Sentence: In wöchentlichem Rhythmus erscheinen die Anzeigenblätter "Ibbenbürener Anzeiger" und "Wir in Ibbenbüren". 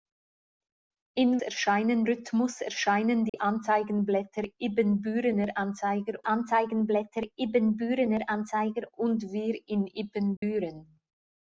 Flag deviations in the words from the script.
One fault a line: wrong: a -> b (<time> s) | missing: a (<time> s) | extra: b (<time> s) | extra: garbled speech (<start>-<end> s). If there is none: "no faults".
wrong: wöchentlichem -> erscheinen (1.4 s)
extra: Anzeigenblätter Ibbenbürener Anzeiger (6.3 s)